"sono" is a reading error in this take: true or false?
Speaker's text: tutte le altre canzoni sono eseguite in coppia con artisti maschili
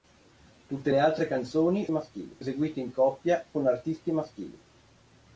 true